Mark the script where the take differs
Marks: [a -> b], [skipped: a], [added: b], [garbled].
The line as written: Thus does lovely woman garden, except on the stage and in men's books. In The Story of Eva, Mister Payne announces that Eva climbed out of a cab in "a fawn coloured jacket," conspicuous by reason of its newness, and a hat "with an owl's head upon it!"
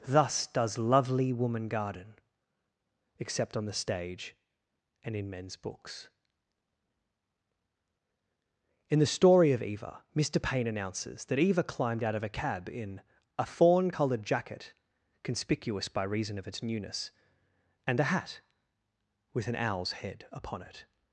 Thus does lovely woman garden, except on the stage and in men's books. In The Story of Eva, Mister Payne announces that Eva climbed out of a cab in "a fawn coloured jacket," conspicuous by reason of its newness, and a hat "with an owl's head upon it!"